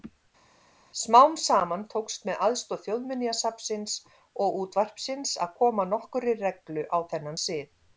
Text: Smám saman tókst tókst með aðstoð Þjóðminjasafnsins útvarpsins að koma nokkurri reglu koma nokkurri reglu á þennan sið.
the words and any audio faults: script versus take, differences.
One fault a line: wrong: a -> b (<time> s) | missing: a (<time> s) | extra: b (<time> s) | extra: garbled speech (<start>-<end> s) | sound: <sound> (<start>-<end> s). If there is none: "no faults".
missing: tókst (2.2 s)
extra: og (4.5 s)
missing: koma nokkurri reglu (6.9 s)